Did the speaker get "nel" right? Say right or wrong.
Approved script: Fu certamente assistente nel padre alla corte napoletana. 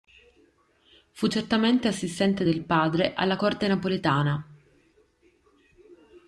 wrong